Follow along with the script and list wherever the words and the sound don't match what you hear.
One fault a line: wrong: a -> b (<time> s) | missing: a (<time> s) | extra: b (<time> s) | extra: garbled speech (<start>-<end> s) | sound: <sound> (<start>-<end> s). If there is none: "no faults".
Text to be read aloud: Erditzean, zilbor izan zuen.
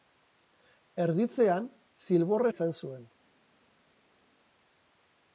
no faults